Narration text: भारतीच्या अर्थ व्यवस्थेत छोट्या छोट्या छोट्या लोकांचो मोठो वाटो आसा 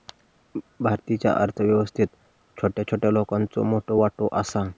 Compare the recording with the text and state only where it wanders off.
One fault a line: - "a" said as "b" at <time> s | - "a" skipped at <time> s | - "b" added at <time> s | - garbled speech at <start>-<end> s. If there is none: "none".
- "छोट्या" skipped at 3.1 s